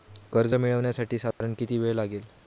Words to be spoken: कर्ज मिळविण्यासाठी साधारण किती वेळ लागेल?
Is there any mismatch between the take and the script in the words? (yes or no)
no